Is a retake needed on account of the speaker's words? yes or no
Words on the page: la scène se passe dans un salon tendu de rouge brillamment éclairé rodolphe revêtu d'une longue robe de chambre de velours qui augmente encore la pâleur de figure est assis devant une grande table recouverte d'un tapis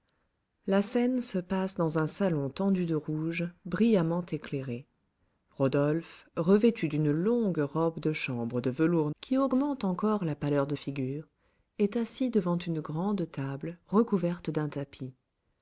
no